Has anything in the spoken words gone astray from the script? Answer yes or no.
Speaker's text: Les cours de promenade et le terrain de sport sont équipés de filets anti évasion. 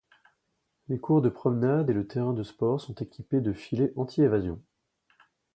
no